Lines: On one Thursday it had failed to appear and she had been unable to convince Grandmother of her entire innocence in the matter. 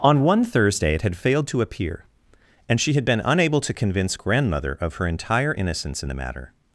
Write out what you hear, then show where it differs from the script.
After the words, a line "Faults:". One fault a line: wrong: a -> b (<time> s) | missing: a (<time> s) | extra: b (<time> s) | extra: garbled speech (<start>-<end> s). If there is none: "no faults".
On one Thursday it had failed to appear and she had been unable to convince Grandmother of her entire innocence in the matter.
Faults:
no faults